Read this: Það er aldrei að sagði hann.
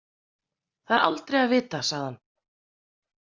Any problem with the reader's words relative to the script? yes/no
yes